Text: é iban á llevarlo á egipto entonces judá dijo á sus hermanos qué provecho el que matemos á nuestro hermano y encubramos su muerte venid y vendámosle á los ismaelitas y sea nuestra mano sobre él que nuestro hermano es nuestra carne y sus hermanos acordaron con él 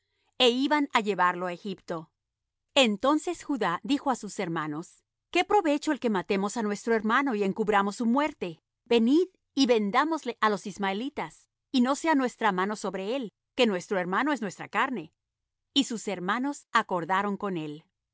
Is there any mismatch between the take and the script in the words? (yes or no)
yes